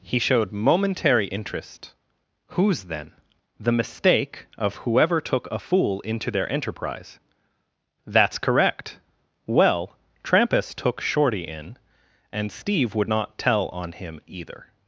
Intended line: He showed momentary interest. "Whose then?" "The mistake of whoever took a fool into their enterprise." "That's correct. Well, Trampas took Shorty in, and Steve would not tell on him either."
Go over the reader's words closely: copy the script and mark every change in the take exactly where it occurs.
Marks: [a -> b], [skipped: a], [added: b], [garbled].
He showed momentary interest. "Whose then?" "The mistake of whoever took a fool into their enterprise." "That's correct. Well, Trampas took Shorty in, and Steve would not tell on him either."